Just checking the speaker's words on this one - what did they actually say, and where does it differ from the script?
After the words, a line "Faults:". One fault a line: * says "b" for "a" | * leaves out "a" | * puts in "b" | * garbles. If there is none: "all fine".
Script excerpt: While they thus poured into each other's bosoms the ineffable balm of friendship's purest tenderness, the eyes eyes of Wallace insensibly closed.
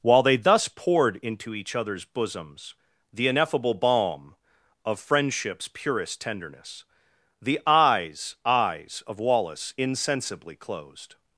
While they thus poured into each other's bosoms the ineffable balm of friendship's purest tenderness, the eyes eyes of Wallace insensibly closed.
Faults:
all fine